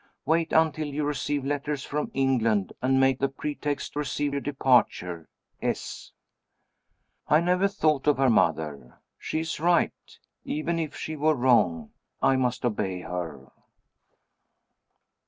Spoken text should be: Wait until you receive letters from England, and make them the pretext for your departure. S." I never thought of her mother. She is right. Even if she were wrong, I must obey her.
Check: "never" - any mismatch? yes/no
no